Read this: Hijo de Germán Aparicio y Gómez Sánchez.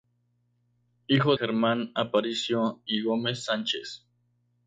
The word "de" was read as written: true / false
false